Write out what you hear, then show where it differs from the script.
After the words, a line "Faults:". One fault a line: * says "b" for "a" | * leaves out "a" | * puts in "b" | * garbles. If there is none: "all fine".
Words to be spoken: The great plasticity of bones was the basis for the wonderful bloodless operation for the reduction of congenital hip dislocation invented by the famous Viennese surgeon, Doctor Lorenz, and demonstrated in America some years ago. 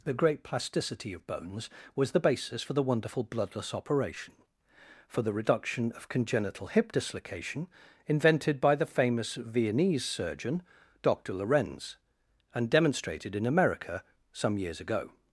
The great plasticity of bones was the basis for the wonderful bloodless operation for the reduction of congenital hip dislocation invented by the famous Viennese surgeon, Doctor Lorenz, and demonstrated in America some years ago.
Faults:
all fine